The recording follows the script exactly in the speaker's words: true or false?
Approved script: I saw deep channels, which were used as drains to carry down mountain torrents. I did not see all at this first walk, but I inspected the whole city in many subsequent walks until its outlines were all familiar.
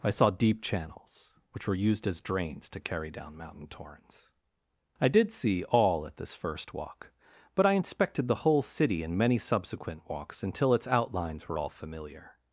false